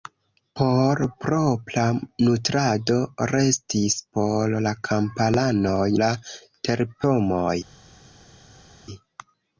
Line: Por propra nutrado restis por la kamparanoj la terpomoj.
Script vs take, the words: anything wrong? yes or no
no